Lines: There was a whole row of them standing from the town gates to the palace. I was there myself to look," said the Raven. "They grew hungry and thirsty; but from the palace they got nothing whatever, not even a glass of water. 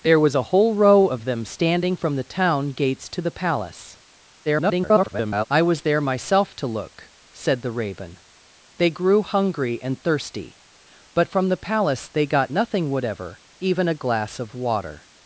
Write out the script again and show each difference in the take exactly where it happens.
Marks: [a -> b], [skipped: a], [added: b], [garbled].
There was a whole row of them standing from the town gates to the palace. [garbled] I was there myself to look," said the Raven. "They grew hungry and thirsty; but from the palace they got nothing whatever, [skipped: not] even a glass of water.